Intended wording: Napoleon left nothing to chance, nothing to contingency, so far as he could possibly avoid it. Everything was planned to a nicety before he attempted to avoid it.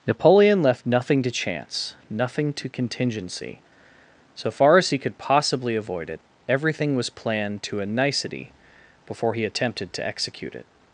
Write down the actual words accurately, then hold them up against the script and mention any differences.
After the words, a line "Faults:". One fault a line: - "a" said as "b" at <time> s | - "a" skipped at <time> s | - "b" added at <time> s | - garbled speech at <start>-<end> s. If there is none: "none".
Napoleon left nothing to chance, nothing to contingency, so far as he could possibly avoid it. Everything was planned to a nicety before he attempted to execute it.
Faults:
- "avoid" said as "execute" at 10.1 s